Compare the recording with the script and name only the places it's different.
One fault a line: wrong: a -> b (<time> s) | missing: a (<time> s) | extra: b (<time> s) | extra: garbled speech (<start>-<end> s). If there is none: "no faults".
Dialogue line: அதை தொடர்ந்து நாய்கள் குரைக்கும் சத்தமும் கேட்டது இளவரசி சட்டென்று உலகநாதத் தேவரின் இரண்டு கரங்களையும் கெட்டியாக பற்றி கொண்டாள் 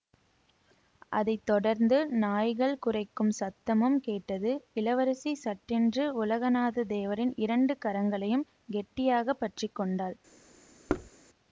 no faults